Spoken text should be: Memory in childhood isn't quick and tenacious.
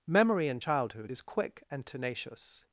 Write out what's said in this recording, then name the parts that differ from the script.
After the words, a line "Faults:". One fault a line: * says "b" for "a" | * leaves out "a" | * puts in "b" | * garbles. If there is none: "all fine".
Memory in childhood is quick and tenacious.
Faults:
* says "is" for "isn't"